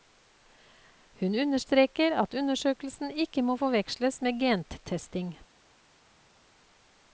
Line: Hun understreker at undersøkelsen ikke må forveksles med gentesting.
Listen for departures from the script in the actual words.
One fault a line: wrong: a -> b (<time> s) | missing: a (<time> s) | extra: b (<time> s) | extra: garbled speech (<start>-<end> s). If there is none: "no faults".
no faults